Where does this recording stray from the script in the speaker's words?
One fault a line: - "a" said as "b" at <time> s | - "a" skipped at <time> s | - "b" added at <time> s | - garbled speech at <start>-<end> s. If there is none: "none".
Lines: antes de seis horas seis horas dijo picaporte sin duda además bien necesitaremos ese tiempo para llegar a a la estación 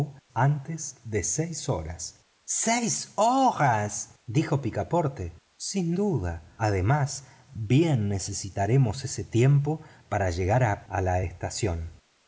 none